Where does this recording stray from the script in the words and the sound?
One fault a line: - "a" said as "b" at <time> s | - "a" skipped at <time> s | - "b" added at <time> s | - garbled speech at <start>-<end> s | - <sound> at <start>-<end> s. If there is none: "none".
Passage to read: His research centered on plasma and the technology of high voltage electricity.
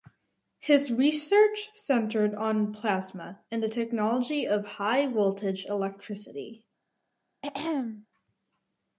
- throat clearing at 7.4-8.1 s